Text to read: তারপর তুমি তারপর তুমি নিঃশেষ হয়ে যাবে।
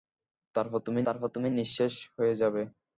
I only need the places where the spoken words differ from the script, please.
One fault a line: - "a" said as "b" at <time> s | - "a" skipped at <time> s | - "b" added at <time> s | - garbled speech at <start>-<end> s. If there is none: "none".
none